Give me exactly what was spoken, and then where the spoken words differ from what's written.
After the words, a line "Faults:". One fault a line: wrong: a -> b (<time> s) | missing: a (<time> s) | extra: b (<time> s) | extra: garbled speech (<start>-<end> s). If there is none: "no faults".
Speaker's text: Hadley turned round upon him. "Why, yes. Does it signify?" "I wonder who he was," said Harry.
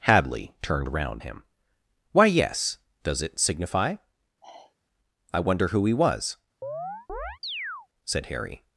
Hadley turned round him. "Why, yes. Does it signify?" "I wonder who he was," said Harry.
Faults:
missing: upon (1.2 s)